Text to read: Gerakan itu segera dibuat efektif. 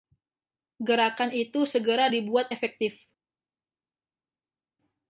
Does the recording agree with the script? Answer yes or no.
yes